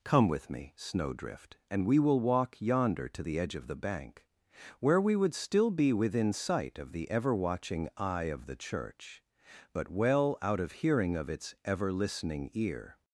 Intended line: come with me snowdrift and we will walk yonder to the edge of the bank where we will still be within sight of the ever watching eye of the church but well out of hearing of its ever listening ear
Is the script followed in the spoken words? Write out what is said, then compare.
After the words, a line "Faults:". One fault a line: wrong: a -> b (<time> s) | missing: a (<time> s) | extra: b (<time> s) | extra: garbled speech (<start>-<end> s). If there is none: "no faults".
come with me snowdrift and we will walk yonder to the edge of the bank where we would still be within sight of the ever watching eye of the church but well out of hearing of its ever listening ear
Faults:
wrong: will -> would (5.2 s)